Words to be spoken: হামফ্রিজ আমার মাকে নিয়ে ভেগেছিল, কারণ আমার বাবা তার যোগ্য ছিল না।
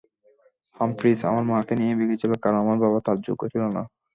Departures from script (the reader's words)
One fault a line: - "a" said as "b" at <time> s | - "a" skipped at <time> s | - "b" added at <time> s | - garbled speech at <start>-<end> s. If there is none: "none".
none